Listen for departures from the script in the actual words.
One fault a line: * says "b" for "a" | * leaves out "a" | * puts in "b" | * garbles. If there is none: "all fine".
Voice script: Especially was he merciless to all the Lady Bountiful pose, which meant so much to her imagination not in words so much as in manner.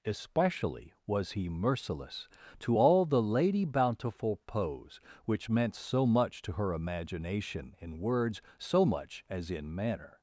* leaves out "not"